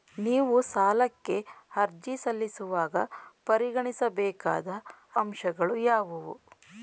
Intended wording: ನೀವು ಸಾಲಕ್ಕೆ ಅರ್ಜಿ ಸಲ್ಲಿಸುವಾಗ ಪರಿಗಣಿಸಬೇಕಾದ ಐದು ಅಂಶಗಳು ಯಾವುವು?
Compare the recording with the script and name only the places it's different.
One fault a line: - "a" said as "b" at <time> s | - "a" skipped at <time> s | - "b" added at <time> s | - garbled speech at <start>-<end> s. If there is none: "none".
- "ಐದು" skipped at 4.7 s